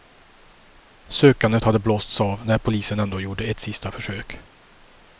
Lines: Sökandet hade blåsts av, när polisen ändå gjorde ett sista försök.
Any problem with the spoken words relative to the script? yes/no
no